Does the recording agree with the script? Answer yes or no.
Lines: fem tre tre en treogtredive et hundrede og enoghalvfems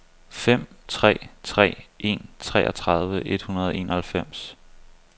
yes